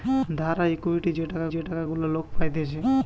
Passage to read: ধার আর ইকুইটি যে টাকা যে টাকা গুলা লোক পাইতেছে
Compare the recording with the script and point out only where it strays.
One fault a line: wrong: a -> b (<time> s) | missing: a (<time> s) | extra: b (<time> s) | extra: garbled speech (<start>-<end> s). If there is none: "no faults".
no faults